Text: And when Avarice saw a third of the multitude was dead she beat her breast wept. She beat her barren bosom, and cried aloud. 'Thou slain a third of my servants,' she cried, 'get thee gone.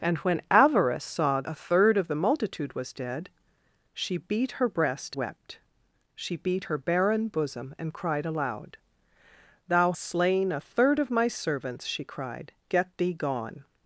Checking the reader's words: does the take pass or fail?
pass